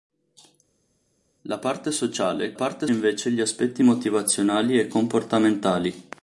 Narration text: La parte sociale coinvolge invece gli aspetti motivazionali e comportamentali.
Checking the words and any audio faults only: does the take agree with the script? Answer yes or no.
no